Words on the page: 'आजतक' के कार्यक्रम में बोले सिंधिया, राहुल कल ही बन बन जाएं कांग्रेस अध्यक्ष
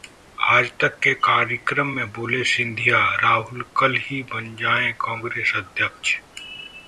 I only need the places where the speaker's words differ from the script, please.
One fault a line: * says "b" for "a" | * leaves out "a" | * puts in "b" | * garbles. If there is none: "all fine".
* leaves out "बन"